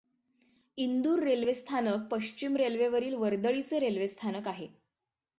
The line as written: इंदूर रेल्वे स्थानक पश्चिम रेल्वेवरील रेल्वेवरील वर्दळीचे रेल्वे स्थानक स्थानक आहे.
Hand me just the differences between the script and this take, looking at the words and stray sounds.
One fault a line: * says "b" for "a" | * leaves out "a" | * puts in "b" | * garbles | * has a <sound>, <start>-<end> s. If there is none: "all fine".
* leaves out "रेल्वेवरील"
* leaves out "स्थानक"